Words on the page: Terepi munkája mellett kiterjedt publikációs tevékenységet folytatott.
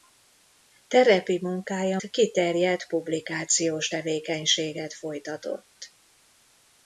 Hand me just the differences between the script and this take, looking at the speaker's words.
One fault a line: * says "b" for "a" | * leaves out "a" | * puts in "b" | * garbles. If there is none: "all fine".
* leaves out "mellett"